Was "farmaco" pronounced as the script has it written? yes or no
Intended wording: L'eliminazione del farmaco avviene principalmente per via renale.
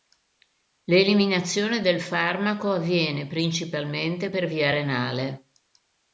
yes